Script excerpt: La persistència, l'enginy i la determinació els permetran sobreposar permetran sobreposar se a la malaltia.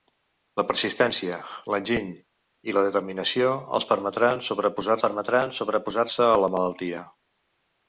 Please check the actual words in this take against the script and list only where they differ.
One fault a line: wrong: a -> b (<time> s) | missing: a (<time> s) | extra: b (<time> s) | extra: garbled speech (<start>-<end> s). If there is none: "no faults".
no faults